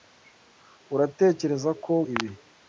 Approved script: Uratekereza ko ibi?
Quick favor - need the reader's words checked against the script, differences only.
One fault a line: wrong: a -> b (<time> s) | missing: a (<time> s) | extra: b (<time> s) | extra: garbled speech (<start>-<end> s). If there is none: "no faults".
no faults